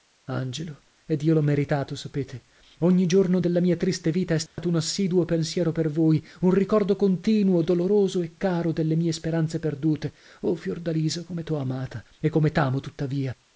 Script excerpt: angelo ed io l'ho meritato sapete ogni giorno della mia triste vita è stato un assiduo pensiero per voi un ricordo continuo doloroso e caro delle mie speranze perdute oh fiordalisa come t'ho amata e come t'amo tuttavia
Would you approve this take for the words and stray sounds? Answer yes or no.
no